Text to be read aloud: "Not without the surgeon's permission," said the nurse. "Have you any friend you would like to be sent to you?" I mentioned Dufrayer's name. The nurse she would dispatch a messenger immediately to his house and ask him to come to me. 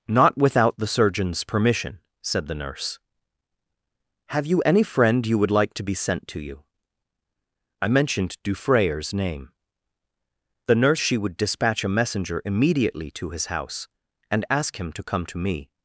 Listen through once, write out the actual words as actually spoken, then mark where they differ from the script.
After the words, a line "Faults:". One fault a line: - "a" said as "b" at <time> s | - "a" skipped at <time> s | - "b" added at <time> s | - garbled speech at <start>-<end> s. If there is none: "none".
"Not without the surgeon's permission," said the nurse. "Have you any friend you would like to be sent to you?" I mentioned Dufrayer's name. The nurse she would dispatch a messenger immediately to his house and ask him to come to me.
Faults:
none